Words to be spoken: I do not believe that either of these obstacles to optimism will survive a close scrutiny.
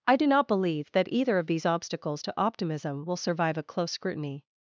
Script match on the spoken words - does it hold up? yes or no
yes